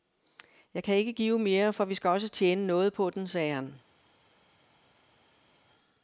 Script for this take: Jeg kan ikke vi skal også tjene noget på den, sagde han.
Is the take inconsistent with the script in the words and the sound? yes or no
yes